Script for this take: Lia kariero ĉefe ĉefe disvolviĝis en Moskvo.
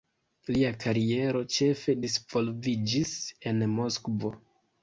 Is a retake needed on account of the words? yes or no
yes